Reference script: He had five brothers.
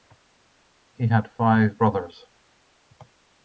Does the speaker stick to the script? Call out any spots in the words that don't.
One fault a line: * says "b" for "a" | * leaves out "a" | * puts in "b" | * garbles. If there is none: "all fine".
all fine